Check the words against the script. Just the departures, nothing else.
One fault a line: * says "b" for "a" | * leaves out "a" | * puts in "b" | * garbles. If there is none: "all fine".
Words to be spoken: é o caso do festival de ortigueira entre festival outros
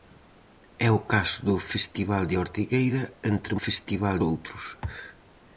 all fine